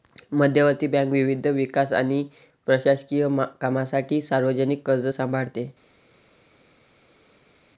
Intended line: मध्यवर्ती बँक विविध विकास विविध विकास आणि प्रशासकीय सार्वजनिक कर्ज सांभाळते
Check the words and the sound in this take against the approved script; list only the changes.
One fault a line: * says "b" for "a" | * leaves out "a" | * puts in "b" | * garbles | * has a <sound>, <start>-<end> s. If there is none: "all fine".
* leaves out "विविध विकास"
* puts in "कामांसाठी"